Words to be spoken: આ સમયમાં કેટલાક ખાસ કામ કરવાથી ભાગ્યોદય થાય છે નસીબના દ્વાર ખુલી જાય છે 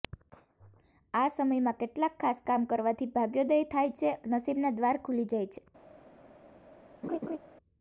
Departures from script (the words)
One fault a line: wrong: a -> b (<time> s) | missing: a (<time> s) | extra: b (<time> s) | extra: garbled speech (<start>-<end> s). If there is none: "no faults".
no faults